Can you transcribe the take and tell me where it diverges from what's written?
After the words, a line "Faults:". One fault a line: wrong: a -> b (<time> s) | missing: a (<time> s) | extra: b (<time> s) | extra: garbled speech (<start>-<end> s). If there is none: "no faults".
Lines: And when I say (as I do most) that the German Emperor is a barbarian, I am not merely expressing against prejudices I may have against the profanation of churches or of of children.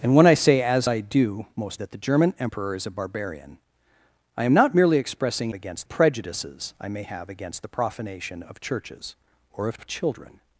And when I say (as I do most) that the German Emperor is a barbarian, I am not merely expressing against prejudices I may have against the profanation of churches or of of children.
Faults:
no faults